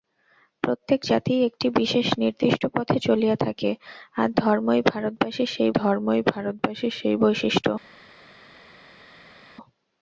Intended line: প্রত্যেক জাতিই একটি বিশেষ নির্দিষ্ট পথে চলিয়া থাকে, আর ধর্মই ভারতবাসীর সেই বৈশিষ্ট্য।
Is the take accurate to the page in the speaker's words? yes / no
no